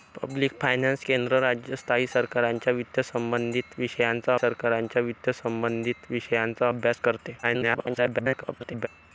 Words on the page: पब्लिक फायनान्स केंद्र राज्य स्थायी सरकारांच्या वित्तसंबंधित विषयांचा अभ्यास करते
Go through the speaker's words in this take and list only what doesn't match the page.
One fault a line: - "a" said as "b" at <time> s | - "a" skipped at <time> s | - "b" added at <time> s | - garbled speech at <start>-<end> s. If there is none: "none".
- "सरकारांच्या वित्तसंबंधित विषयांचा" added at 4.3 s
- garbled speech at 7.4-8.9 s